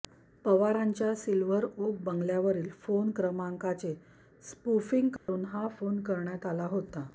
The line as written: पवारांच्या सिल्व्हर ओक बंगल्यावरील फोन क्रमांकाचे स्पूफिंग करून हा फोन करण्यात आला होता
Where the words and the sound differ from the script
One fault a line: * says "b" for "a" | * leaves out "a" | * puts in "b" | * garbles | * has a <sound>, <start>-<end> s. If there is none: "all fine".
* has a dropout, 5.2-5.3 s